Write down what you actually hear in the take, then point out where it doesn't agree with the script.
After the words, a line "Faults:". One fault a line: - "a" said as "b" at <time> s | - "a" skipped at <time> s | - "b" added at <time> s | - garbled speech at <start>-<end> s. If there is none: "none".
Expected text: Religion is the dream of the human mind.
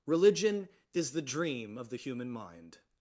Religion is the dream of the human mind.
Faults:
none